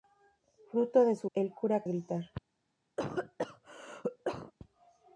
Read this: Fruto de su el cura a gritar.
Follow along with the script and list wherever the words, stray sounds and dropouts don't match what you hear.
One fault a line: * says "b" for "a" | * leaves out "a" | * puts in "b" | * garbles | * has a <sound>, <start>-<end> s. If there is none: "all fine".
* has a cough, 3.0-4.5 s